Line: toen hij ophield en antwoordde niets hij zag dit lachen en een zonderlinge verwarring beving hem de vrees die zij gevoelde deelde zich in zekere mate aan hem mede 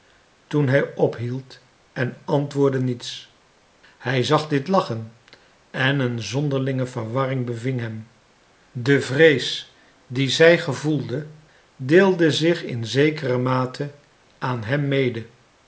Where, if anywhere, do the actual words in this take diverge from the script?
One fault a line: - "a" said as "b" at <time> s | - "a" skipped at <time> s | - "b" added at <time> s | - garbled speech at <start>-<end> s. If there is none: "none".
none